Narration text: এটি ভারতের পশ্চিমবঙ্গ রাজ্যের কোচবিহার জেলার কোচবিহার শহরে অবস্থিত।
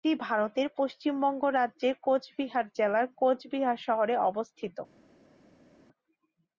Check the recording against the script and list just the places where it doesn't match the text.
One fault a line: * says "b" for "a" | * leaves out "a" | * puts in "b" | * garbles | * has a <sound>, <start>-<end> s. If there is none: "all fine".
all fine